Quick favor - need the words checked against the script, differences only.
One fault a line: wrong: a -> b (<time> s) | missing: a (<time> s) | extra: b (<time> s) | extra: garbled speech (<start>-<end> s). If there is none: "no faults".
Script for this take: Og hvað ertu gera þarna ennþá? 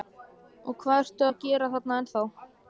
extra: að (1.2 s)